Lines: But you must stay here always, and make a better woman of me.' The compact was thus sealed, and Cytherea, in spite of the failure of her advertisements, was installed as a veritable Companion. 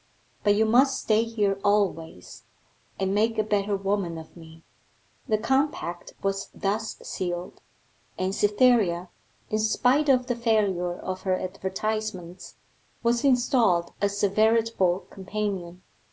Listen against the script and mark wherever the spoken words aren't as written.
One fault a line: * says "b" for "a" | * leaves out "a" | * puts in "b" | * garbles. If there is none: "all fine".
all fine